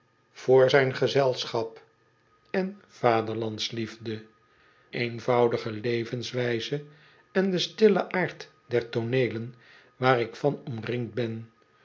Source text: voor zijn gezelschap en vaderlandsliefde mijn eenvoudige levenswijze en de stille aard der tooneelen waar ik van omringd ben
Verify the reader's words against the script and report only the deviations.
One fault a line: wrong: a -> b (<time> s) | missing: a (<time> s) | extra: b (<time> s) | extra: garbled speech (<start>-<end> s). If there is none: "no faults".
missing: mijn (4.2 s)